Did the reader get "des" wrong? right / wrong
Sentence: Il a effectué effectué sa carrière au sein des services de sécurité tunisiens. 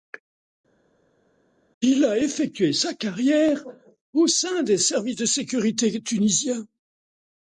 right